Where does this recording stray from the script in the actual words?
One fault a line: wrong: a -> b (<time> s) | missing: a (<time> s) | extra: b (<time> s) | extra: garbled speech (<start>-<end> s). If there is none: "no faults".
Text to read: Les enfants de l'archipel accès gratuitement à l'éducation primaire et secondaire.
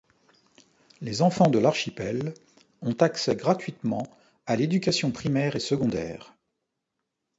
extra: ont (2.8 s)